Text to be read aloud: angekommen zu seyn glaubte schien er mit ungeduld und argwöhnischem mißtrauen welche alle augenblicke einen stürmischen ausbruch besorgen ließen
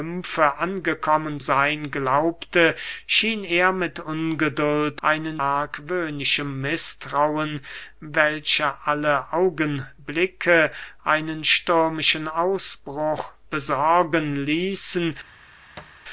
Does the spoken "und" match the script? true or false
false